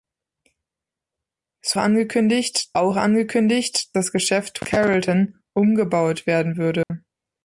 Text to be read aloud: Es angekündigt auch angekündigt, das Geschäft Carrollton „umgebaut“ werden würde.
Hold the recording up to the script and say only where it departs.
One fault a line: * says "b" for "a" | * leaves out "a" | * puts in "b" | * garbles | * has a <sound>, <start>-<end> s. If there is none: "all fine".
* has a dropout, 6.8-6.9 s